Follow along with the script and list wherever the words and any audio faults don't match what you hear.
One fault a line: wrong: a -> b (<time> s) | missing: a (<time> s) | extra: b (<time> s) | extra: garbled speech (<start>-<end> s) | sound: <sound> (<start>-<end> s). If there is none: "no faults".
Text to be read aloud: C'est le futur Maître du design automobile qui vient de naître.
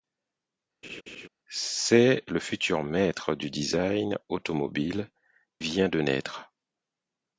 sound: laugh (0.8-1.3 s)
missing: qui (5.1 s)